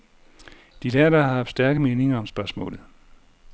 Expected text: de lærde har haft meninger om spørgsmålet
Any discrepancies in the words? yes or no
yes